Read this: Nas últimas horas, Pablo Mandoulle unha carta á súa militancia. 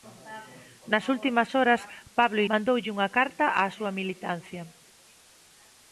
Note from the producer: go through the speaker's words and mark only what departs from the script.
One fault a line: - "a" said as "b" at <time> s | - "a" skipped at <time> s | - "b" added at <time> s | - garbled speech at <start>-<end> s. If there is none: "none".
none